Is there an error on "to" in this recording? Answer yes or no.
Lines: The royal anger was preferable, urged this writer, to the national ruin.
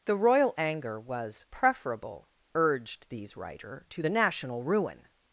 no